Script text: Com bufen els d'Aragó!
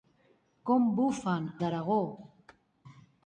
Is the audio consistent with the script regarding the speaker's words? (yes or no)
no